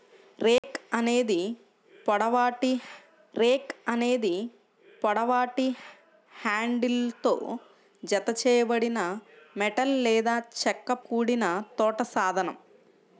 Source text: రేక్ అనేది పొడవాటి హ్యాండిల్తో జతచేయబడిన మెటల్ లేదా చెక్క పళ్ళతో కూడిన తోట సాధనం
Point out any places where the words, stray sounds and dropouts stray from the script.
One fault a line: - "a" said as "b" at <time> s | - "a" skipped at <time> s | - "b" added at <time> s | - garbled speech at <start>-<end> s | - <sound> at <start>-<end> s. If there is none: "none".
- dropout at 0.6-0.6 s
- "రేక్ అనేది పొడవాటి" added at 3.3 s
- "పళ్ళతో" skipped at 10.9 s